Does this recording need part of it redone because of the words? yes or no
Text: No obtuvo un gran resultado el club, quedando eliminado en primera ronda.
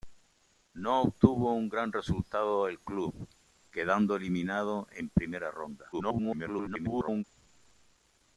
yes